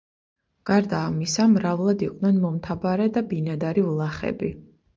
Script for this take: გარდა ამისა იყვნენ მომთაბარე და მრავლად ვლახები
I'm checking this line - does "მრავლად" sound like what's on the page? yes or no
no